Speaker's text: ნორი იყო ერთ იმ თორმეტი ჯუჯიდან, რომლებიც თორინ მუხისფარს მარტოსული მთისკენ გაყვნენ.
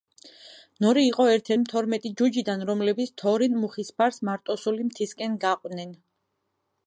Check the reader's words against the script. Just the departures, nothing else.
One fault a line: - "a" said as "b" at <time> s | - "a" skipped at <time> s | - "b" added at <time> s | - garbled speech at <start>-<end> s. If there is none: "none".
none